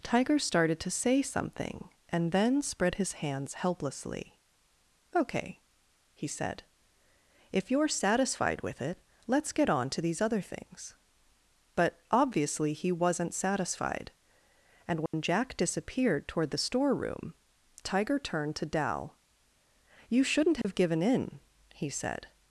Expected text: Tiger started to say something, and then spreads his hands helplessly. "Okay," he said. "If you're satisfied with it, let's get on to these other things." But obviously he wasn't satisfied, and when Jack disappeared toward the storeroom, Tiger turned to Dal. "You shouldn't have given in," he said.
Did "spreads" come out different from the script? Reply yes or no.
yes